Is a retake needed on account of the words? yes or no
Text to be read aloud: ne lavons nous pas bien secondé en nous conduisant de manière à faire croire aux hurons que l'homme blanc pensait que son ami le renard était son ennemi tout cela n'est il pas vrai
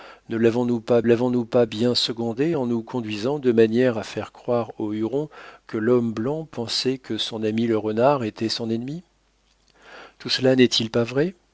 yes